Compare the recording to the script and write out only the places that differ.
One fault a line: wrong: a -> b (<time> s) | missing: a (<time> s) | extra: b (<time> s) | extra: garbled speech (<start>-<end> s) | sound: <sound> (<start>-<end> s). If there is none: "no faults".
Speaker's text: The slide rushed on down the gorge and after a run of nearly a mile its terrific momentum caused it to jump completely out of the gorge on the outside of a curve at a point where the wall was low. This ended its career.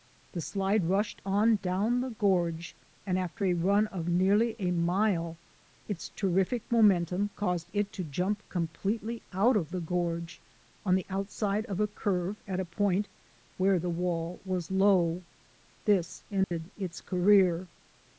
sound: dropout (16.4-16.5 s)